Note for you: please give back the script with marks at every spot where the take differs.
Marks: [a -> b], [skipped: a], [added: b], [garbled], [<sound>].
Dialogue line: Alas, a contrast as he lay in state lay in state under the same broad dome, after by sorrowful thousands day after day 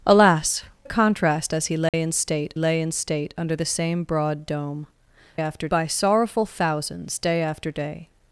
Alas, a contrast as he lay [dropout] in state lay in state under the same broad dome, after by sorrowful thousands day after day